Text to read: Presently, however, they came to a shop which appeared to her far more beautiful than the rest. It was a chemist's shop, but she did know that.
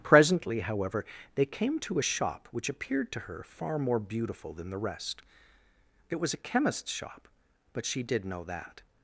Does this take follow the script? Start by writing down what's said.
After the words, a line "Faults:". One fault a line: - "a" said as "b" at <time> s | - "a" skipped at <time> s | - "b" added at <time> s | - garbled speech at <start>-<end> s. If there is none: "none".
Presently, however, they came to a shop which appeared to her far more beautiful than the rest. It was a chemist's shop, but she did know that.
Faults:
none